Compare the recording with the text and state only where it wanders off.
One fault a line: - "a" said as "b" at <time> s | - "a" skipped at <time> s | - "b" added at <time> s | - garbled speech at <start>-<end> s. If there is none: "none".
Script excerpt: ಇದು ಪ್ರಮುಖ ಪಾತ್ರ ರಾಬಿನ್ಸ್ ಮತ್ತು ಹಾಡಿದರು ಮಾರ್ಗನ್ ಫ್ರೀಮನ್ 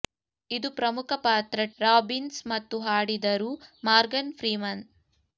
none